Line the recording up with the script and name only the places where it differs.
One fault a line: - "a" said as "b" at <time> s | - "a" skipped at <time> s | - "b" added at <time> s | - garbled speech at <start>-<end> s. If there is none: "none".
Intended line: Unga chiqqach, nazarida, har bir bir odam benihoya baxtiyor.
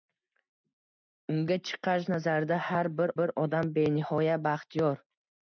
none